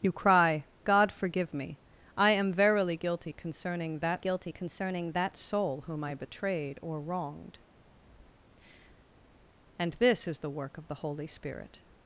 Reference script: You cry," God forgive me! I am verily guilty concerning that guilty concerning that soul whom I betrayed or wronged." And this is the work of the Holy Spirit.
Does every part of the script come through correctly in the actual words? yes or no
yes